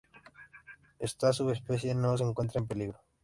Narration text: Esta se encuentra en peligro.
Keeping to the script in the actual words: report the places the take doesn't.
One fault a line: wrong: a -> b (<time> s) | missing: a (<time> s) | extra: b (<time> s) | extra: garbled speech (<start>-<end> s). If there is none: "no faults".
extra: subespecie no (1.3 s)